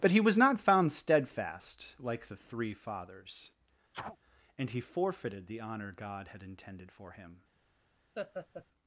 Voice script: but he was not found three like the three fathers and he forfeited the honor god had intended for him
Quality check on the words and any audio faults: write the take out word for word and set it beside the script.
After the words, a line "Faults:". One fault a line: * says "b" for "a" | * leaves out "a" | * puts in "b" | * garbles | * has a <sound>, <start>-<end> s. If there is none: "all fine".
but he was not found steadfast like the three fathers and he forfeited the honor god had intended for him
Faults:
* says "steadfast" for "three"
* has a sneeze, 3.9-4.2 s
* has a laugh, 8.1-8.7 s